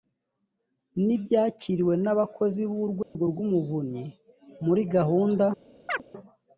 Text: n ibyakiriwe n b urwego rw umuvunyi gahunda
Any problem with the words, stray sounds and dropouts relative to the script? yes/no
yes